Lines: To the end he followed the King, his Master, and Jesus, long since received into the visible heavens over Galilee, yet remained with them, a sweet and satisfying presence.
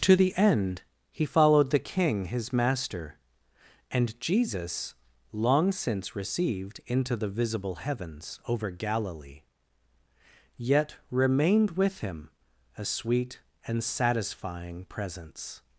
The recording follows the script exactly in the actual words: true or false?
false